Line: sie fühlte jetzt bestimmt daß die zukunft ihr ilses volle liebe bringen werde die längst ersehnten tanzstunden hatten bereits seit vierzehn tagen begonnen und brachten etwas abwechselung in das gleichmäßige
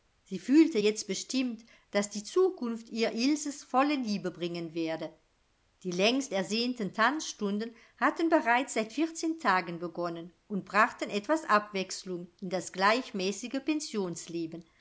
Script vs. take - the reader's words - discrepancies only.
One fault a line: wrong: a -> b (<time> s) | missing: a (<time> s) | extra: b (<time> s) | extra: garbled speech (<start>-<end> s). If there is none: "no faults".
no faults